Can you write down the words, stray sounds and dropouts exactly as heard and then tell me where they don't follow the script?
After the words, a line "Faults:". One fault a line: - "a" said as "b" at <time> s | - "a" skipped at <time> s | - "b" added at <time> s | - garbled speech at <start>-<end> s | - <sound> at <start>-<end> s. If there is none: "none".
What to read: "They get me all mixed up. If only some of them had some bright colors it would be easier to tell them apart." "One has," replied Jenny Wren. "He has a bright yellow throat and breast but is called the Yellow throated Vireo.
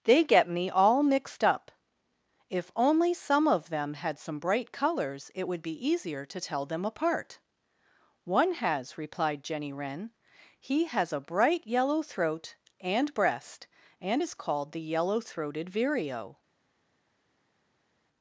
"They get me all mixed up. If only some of them had some bright colors it would be easier to tell them apart." "One has," replied Jenny Wren. "He has a bright yellow throat and breast and is called the Yellow throated Vireo.
Faults:
- "but" said as "and" at 14.0 s